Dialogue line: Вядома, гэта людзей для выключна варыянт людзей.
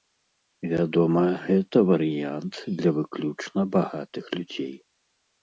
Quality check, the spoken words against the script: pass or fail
fail